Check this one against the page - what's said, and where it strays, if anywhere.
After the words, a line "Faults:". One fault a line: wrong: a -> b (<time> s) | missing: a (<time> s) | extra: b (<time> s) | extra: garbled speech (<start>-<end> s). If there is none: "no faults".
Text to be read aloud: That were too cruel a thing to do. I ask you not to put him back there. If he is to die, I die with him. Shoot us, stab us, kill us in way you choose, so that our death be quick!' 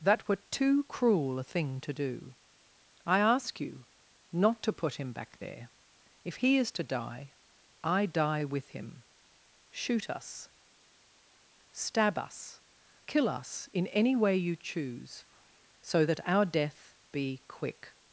That were too cruel a thing to do. I ask you not to put him back there. If he is to die, I die with him. Shoot us, stab us, kill us in any way you choose, so that our death be quick!'
Faults:
extra: any (13.9 s)